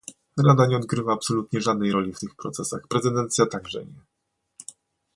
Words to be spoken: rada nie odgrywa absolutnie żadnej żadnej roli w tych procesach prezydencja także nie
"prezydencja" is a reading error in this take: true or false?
false